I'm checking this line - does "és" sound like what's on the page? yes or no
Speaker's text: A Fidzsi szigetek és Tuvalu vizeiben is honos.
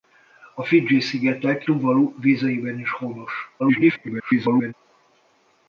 no